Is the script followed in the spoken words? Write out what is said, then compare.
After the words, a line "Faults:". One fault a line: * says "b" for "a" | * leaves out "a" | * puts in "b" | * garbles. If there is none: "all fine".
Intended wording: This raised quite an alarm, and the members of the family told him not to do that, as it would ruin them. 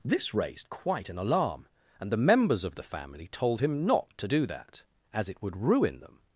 This raised quite an alarm, and the members of the family told him not to do that, as it would ruin them.
Faults:
all fine